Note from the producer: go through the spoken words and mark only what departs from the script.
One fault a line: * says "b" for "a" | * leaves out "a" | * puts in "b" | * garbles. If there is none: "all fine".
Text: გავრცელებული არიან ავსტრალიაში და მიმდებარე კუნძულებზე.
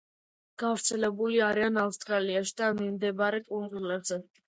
all fine